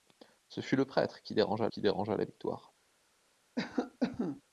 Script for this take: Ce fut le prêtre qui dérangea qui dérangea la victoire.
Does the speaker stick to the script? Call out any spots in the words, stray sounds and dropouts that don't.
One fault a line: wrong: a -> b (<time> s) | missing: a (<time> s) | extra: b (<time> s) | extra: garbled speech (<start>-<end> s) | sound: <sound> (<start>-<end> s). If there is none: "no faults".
sound: cough (3.6-4.4 s)